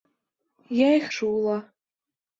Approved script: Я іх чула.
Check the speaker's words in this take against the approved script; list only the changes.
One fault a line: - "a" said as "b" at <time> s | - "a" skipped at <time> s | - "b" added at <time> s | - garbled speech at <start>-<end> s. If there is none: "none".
none